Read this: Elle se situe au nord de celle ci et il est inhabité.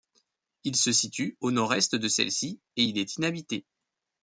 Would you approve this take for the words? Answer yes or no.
no